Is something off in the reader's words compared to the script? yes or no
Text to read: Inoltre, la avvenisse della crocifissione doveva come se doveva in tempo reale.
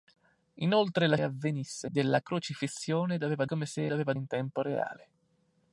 no